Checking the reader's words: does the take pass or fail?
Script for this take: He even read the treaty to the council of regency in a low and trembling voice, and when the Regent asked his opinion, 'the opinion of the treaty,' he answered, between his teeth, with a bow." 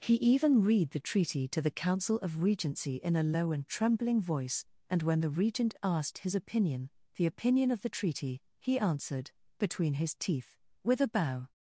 pass